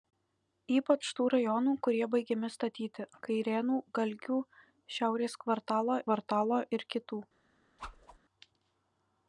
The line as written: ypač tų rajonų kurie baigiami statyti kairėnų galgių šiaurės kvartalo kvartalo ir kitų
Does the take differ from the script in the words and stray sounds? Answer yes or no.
yes